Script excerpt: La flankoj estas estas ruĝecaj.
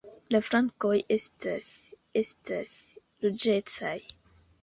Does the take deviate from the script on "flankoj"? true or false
false